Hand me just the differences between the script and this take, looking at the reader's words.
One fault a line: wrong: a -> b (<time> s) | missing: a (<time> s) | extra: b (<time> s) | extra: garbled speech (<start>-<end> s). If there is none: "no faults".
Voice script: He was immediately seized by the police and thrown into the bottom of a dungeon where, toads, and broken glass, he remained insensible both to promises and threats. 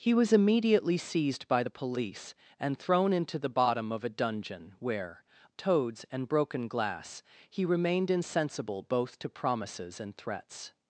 no faults